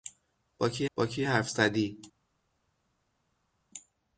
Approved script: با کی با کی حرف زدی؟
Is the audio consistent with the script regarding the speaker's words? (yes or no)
yes